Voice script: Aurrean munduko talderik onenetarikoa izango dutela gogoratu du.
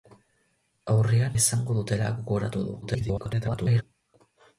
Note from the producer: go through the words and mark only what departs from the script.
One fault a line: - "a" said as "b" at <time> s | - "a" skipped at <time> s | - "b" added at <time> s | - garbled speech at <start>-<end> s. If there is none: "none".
- "munduko talderik onenetarikoa" skipped at 1.4 s
- garbled speech at 2.8-3.8 s